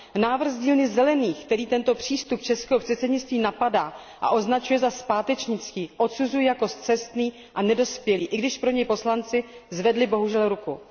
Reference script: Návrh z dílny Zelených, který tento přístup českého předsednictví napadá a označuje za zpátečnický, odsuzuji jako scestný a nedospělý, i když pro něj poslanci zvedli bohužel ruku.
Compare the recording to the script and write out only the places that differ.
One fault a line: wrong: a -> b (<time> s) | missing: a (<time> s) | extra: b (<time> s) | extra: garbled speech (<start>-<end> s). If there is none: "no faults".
no faults